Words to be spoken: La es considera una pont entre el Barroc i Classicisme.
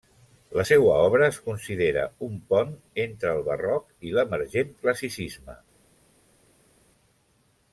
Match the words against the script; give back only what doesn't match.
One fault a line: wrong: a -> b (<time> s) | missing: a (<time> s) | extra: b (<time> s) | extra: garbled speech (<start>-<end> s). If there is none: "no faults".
extra: seua obra (0.7 s)
wrong: una -> un (2.3 s)
extra: l'emergent (4.2 s)